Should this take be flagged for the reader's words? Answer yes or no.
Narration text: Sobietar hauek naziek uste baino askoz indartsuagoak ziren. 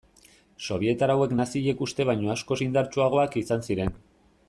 yes